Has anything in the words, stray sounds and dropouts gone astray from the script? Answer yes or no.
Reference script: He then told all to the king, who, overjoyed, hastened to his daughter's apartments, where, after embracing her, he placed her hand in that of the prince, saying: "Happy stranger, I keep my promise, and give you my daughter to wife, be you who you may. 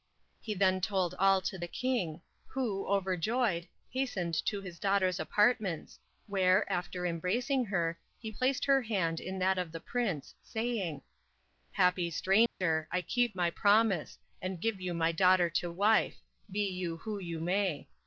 yes